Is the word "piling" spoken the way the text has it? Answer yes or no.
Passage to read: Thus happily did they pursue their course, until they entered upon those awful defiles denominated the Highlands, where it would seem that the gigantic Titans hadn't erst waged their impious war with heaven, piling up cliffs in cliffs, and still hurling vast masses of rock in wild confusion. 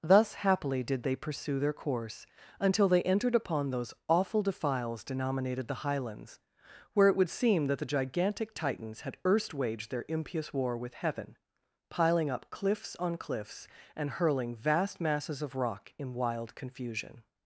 yes